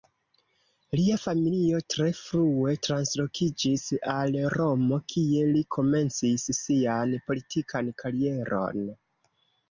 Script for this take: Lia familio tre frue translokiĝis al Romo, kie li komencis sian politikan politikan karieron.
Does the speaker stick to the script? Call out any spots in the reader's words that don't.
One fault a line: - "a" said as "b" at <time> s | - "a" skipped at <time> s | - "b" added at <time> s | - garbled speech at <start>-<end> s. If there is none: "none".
- "politikan" skipped at 7.9 s